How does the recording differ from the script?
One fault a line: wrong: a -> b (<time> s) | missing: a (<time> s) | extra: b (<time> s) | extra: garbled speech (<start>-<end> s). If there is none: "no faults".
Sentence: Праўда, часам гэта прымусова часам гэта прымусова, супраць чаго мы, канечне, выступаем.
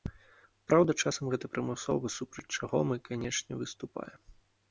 missing: часам гэта прымусова (2.1 s)